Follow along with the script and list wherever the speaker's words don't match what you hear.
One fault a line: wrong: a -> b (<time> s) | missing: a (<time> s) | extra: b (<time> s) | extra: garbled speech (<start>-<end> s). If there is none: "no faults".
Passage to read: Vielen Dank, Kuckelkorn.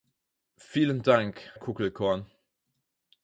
no faults